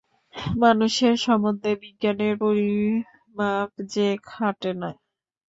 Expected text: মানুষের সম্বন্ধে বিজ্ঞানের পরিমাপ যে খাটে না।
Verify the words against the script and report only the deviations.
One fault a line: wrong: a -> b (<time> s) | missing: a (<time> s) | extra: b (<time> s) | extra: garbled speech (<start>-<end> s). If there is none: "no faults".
no faults